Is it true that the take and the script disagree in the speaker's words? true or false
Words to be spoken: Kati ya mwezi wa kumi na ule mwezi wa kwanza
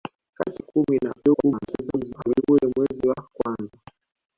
true